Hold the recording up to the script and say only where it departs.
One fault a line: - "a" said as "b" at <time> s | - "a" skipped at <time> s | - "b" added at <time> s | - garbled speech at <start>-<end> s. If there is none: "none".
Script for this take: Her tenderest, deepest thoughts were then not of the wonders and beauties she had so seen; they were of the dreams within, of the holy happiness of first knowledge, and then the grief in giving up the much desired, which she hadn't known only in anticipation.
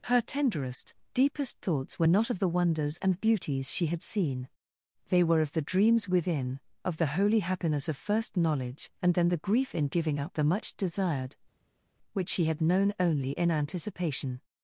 - "then" skipped at 2.1 s
- "so" skipped at 4.0 s
- "hadn't" said as "had" at 12.4 s